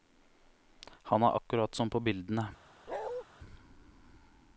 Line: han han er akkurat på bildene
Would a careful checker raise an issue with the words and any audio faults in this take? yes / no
yes